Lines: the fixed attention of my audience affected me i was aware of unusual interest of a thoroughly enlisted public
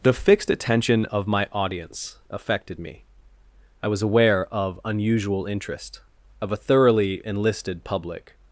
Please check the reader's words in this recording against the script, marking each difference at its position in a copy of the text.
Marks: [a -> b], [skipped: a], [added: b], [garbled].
the fixed attention of my audience affected me i was aware of unusual interest of a thoroughly enlisted public